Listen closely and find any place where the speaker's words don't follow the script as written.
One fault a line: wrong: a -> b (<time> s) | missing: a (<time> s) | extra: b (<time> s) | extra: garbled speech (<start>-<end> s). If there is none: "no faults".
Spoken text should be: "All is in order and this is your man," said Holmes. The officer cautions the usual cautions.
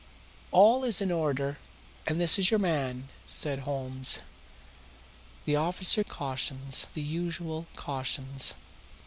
no faults